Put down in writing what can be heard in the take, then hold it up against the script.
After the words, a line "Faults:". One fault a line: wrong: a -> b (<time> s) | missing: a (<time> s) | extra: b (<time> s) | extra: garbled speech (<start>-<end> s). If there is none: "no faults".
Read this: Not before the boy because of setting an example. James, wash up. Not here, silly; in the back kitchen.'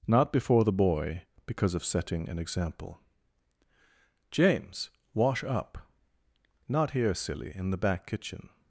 Not before the boy because of setting an example. James, wash up. Not here, silly; in the back kitchen.'
Faults:
no faults